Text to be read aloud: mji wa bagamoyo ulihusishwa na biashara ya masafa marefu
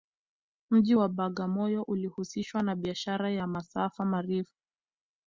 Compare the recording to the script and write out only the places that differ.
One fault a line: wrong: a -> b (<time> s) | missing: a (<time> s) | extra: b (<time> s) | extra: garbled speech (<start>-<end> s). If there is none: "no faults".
no faults